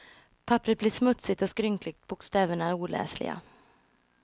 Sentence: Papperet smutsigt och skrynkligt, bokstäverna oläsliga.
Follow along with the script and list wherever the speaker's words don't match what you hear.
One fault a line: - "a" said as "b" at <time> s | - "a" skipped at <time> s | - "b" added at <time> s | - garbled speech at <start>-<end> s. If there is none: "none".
- "blir" added at 0.8 s